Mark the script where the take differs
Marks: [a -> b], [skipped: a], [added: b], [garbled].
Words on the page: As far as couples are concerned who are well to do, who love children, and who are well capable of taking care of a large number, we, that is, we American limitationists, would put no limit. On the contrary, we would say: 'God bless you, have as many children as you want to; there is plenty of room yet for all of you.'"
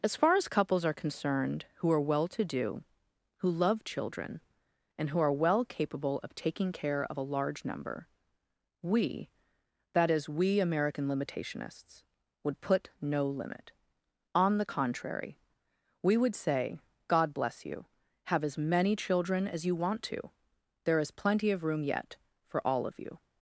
As far as couples are concerned who are well to do, who love children, and who are well capable of taking care of a large number, we, that is, we American limitationists, would put no limit. On the contrary, we would say: 'God bless you, have as many children as you want to; there is plenty of room yet for all of you.'"